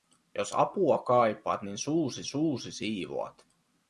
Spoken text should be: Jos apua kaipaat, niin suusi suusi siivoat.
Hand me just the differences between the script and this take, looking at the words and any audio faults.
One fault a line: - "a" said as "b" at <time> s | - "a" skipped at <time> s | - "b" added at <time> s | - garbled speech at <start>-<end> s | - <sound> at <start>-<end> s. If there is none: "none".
none